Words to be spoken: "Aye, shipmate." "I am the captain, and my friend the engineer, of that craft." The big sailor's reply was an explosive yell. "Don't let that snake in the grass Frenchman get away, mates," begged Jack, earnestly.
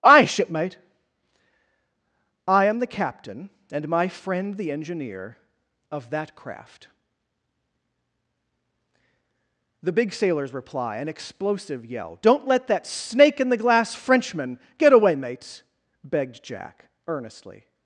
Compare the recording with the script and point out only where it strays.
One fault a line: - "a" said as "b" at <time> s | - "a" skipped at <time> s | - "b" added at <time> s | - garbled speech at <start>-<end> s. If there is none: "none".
- "was" skipped at 11.0 s
- "grass" said as "glass" at 13.6 s